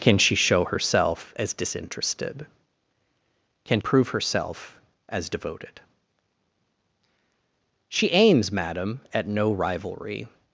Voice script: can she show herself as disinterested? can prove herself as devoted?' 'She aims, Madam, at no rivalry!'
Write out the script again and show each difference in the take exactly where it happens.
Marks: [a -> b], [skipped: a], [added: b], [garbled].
can she show herself as disinterested? can prove herself as devoted?' 'She aims, Madam, at no rivalry!'